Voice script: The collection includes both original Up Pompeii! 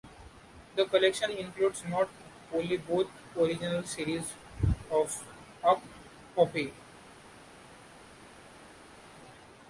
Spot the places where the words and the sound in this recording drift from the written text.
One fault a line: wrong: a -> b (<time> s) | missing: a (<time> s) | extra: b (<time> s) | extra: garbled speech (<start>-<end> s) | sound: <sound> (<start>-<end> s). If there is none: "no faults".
extra: not only (1.9 s)
extra: series of (3.8 s)